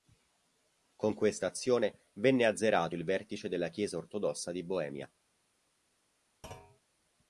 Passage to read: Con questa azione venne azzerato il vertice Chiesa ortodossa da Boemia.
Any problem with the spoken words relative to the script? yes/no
yes